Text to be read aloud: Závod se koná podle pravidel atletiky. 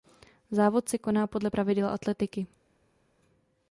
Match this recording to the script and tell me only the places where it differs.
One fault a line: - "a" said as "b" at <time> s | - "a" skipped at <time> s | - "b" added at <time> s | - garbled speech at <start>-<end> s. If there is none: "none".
none